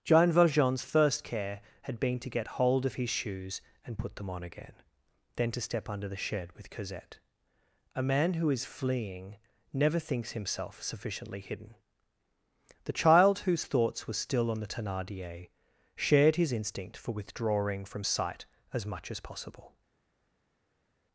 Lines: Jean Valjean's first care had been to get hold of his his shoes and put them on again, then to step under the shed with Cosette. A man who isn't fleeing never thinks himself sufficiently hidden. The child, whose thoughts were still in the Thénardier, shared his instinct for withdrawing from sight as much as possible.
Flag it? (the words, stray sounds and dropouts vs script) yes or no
yes